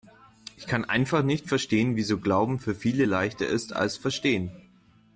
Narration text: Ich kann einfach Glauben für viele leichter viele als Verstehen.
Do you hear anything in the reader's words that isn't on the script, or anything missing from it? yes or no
yes